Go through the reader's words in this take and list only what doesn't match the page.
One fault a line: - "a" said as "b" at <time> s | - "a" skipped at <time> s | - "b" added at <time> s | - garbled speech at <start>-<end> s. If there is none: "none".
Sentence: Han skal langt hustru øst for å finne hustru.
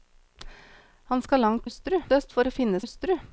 none